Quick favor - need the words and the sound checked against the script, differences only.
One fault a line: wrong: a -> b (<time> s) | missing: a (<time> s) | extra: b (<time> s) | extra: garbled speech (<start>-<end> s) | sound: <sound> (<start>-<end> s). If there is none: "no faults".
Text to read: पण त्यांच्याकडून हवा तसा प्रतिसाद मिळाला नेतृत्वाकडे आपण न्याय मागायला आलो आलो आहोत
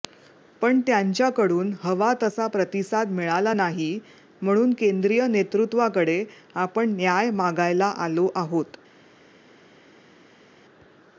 extra: नाही म्हणून केंद्रीय (3.5 s)
missing: आलो (8.3 s)